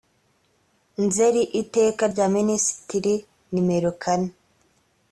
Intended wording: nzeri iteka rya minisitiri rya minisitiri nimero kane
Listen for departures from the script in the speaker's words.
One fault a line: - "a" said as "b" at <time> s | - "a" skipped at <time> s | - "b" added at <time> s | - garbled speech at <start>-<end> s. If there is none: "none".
- "rya minisitiri" skipped at 3.1 s